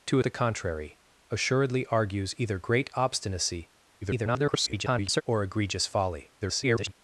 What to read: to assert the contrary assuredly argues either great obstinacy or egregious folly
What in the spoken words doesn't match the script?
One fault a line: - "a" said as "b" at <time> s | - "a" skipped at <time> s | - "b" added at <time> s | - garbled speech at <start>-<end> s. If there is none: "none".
- "assert" skipped at 0.2 s
- garbled speech at 4.0-5.2 s
- garbled speech at 6.4-6.9 s